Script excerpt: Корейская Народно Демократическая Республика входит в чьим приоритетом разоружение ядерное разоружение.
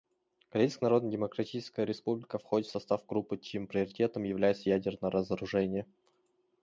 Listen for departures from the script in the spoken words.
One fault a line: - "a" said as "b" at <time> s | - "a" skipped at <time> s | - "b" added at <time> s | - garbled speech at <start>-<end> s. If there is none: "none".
- "состав группы" added at 2.7 s
- "разоружение" said as "является" at 4.2 s